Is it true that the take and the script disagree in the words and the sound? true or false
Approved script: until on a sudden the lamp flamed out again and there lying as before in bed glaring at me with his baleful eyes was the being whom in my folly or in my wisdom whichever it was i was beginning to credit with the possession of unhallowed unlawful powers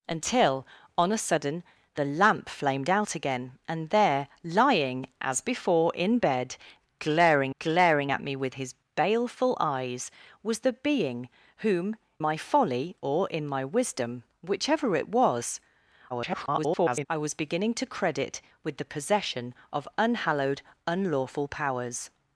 true